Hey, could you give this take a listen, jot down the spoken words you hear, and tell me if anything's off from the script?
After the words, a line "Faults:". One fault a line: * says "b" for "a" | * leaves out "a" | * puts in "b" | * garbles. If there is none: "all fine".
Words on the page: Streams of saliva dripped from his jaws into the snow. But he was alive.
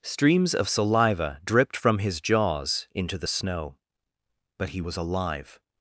Streams of saliva dripped from his jaws into the snow. But he was alive.
Faults:
all fine